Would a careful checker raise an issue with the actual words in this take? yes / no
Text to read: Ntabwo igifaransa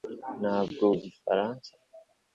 no